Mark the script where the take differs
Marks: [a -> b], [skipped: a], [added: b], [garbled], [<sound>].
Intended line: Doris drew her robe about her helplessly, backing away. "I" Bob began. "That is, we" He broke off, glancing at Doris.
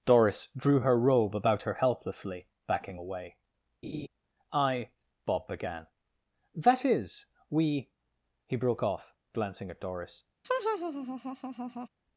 Doris drew her robe about her helplessly, backing away. [laugh] "I" Bob began. "That is, we" He broke off, glancing at Doris. [laugh]